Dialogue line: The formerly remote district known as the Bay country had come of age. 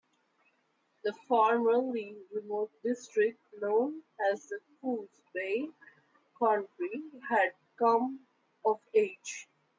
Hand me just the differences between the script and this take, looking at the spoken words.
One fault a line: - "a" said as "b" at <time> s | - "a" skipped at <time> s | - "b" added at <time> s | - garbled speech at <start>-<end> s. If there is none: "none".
- "Coos" added at 4.8 s